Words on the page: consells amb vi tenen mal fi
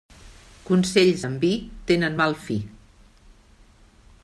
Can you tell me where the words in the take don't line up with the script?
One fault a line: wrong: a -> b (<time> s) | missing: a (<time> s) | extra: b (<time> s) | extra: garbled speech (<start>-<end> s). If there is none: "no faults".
no faults